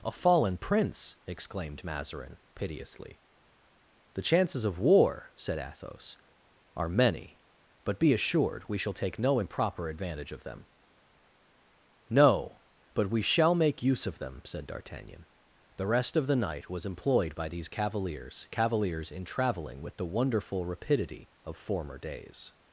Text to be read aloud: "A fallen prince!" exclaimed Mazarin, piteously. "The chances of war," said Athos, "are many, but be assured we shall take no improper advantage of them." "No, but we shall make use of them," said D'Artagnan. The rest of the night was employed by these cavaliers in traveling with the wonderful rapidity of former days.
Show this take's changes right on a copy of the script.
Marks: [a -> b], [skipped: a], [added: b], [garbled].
"A fallen prince!" exclaimed Mazarin, piteously. "The chances of war," said Athos, "are many, but be assured we shall take no improper advantage of them." "No, but we shall make use of them," said D'Artagnan. The rest of the night was employed by these cavaliers [added: cavaliers] in traveling with the wonderful rapidity of former days.